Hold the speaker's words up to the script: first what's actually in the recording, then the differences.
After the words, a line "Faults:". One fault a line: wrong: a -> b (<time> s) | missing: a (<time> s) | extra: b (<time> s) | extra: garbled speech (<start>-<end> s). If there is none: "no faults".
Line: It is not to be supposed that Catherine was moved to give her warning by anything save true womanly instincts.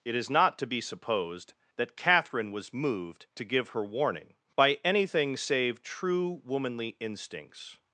It is not to be supposed that Catherine was moved to give her warning by anything save true womanly instincts.
Faults:
no faults